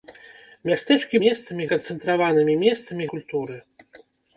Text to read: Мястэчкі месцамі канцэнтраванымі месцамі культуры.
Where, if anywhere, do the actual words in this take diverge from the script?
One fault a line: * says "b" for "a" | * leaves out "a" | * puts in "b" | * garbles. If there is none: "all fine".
all fine